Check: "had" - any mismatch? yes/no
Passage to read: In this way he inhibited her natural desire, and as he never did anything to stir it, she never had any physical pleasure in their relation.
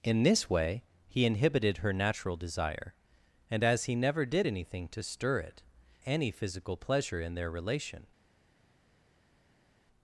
yes